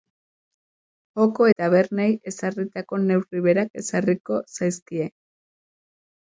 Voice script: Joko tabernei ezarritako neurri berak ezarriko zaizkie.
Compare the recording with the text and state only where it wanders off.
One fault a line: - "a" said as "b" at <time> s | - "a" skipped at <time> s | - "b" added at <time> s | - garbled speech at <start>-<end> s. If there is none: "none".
none